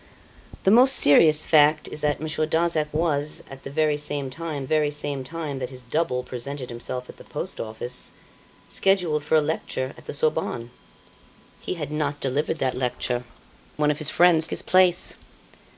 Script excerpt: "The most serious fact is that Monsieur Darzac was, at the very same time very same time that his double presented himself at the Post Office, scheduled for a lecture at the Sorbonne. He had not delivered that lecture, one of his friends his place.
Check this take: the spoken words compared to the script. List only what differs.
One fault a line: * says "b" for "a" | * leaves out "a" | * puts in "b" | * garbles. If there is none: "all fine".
all fine